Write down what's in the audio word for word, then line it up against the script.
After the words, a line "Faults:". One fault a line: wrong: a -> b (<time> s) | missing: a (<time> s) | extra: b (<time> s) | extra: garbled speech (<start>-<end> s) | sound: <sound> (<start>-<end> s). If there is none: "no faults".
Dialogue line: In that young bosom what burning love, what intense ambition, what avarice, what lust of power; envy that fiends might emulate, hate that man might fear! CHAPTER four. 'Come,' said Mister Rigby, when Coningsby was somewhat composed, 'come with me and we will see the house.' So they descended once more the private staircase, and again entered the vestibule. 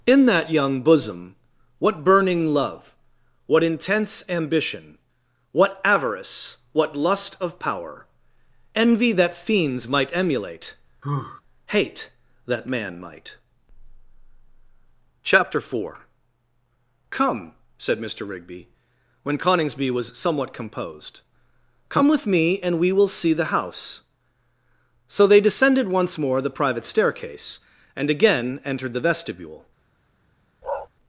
In that young bosom what burning love, what intense ambition, what avarice, what lust of power; envy that fiends might emulate, hate that man might! CHAPTER four. 'Come,' said Mister Rigby, when Coningsby was somewhat composed, 'come with me and we will see the house.' So they descended once more the private staircase, and again entered the vestibule.
Faults:
sound: sigh (11.0-11.4 s)
missing: fear (13.4 s)
sound: bark (30.6-30.9 s)